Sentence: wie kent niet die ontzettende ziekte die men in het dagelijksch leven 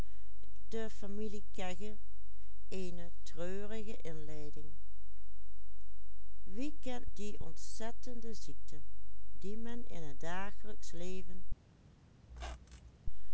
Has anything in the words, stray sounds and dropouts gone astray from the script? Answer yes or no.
yes